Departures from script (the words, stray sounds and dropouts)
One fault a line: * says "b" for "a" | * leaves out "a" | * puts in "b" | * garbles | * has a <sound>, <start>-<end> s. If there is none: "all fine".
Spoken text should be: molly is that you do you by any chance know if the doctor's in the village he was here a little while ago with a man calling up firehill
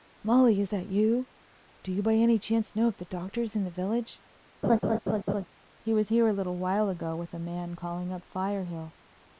* has a laugh, 4.6-5.5 s